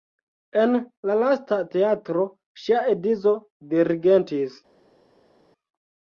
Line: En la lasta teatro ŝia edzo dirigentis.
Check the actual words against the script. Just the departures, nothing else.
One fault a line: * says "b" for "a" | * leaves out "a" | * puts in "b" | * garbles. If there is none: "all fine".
all fine